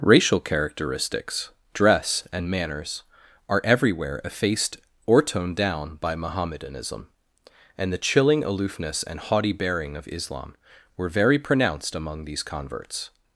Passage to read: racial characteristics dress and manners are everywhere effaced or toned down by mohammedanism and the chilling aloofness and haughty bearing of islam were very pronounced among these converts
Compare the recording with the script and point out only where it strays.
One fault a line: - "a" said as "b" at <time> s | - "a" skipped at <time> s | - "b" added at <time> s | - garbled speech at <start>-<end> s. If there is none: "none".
none